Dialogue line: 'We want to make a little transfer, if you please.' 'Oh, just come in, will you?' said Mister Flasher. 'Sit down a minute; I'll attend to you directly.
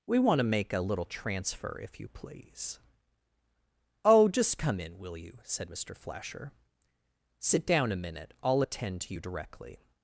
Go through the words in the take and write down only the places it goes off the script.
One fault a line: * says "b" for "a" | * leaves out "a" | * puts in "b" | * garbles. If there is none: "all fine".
all fine